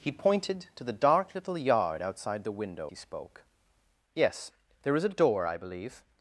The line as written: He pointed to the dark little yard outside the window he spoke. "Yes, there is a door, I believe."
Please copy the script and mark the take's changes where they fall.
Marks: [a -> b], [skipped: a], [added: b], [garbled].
He pointed to the dark little yard outside the window he spoke. "Yes, there is a door, I believe."